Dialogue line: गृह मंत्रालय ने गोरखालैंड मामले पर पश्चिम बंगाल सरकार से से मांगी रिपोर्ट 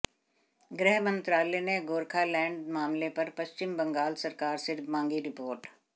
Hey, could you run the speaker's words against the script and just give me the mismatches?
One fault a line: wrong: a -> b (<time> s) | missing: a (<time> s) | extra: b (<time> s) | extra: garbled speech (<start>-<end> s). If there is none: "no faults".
missing: से (4.8 s)